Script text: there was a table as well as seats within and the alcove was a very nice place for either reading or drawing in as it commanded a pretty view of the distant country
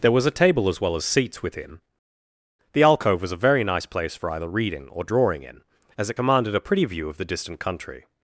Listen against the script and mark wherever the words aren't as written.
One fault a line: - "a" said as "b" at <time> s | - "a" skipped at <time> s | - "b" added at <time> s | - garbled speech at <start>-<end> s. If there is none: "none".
- "and" skipped at 1.8 s